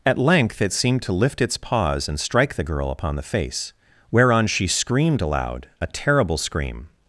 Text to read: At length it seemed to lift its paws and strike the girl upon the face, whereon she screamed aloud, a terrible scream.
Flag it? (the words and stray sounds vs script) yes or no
no